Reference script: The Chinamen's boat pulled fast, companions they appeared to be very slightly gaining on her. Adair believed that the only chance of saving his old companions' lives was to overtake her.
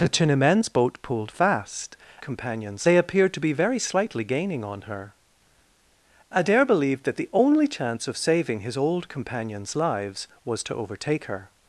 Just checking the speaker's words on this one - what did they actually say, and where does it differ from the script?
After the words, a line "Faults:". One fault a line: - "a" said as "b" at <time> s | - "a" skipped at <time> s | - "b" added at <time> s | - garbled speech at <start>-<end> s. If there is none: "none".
The Chinamen's boat pulled fast, companions they appeared to be very slightly gaining on her. Adair believed that the only chance of saving his old companions' lives was to overtake her.
Faults:
none